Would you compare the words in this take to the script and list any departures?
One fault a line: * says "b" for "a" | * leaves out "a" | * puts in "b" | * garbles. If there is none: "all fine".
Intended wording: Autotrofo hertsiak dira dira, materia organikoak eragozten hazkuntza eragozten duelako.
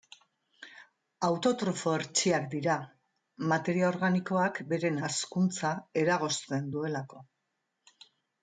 * leaves out "dira"
* says "beren" for "eragozten"